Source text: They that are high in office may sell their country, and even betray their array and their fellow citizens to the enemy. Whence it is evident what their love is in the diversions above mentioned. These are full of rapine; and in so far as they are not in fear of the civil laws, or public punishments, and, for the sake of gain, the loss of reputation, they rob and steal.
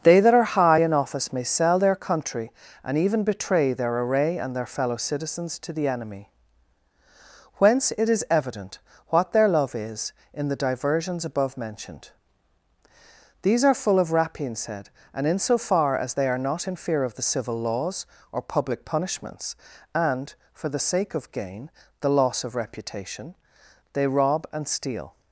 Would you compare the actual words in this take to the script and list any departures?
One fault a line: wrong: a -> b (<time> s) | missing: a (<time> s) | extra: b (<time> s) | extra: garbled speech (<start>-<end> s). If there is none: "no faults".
extra: said (14.5 s)